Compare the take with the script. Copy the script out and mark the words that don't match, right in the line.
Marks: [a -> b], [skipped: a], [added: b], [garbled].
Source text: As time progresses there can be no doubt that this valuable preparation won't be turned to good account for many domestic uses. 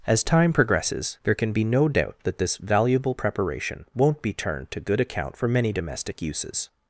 As time progresses there can be no doubt that this valuable preparation won't be turned to good account for many domestic uses.